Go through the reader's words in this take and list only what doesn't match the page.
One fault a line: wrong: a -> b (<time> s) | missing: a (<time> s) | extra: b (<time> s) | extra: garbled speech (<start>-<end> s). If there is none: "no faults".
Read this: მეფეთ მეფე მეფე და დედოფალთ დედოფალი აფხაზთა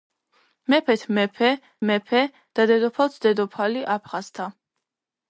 no faults